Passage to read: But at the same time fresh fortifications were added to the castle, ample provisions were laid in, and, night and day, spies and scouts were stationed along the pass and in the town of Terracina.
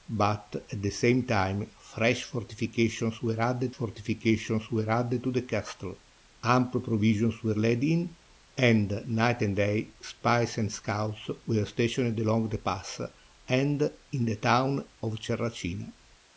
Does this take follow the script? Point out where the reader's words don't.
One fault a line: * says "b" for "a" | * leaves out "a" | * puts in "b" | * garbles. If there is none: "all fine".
* puts in "fortifications were added"